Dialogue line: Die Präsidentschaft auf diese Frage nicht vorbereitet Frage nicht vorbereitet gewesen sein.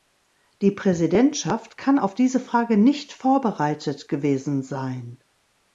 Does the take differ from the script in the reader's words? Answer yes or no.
yes